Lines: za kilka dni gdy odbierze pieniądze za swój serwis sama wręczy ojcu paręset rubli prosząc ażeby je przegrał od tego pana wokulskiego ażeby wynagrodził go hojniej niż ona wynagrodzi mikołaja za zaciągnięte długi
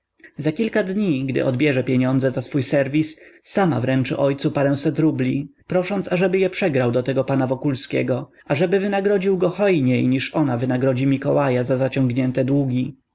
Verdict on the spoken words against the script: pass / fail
fail